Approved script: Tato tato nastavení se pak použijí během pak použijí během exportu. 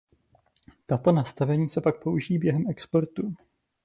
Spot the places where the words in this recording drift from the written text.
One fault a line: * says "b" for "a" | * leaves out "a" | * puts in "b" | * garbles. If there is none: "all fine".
* leaves out "tato"
* leaves out "pak použijí během"